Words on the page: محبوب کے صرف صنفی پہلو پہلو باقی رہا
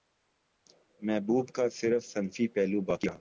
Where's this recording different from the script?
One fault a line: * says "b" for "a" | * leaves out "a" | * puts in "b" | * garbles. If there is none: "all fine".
* says "کا" for "کے"
* leaves out "پہلو"